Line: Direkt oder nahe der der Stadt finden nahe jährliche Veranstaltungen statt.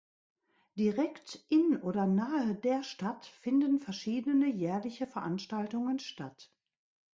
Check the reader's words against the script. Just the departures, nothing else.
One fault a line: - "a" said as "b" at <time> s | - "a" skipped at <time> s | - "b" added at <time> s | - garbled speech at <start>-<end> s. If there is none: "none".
- "in" added at 1.4 s
- "der" skipped at 2.8 s
- "nahe" said as "verschiedene" at 3.8 s